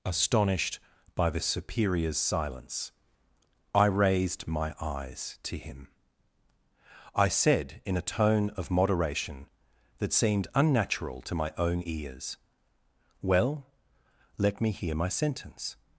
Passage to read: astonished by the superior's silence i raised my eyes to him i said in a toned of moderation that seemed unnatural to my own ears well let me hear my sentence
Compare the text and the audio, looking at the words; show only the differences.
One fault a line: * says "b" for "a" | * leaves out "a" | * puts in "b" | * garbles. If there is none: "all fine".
* says "tone" for "toned"